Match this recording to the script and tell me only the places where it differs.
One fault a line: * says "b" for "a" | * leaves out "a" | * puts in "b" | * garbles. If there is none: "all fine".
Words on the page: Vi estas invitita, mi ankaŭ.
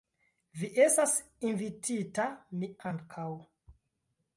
all fine